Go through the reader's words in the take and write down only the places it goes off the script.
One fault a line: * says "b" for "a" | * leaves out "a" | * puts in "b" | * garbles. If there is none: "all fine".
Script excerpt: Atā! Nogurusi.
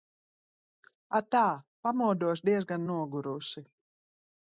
* puts in "Pamodos diezgan"